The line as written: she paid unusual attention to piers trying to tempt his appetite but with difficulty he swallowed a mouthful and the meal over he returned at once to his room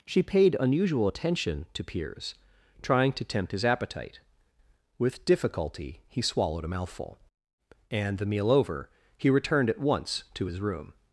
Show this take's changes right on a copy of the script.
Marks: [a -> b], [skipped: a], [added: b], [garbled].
she paid unusual attention to piers trying to tempt his appetite [skipped: but] with difficulty he swallowed a mouthful and the meal over he returned at once to his room